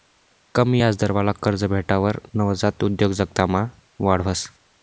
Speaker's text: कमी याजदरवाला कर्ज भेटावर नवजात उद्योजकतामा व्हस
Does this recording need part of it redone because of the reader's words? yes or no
yes